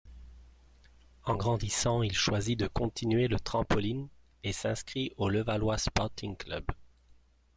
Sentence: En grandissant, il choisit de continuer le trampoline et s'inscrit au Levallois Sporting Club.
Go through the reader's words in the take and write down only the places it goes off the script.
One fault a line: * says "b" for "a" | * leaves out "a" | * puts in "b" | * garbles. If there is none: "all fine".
all fine